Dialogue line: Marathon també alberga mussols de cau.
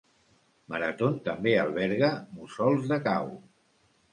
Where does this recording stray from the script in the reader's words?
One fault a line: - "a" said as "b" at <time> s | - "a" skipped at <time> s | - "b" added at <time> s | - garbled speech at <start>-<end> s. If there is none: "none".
none